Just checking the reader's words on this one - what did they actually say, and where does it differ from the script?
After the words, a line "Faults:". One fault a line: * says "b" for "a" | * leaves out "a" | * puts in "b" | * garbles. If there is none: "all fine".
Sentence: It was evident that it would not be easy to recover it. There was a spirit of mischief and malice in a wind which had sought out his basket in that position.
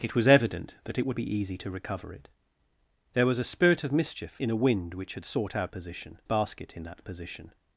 It was evident that it would be easy to recover it. There was a spirit of mischief in a wind which had sought out position basket in that position.
Faults:
* leaves out "not"
* leaves out "and malice"
* says "position" for "his"